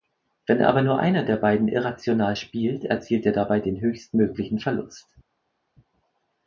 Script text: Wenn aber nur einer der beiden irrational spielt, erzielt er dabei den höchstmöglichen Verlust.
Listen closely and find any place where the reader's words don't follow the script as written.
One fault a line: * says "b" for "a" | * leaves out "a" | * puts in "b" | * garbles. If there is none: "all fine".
all fine